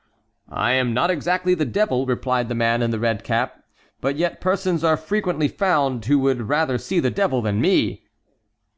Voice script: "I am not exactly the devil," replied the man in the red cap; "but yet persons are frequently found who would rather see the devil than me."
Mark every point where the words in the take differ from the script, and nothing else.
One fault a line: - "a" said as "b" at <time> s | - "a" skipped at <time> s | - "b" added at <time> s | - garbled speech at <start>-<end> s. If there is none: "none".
none